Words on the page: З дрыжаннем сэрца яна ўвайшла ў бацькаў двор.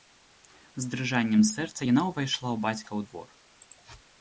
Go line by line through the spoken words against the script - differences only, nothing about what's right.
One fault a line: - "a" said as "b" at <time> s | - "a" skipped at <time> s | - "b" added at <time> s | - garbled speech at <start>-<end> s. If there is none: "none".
none